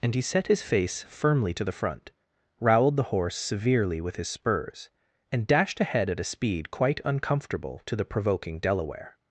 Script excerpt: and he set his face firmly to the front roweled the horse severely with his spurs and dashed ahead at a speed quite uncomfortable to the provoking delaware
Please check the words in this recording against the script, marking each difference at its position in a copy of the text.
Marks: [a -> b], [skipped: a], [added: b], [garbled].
and he set his face firmly to the front roweled the horse severely with his spurs and dashed ahead at a speed quite uncomfortable to the provoking delaware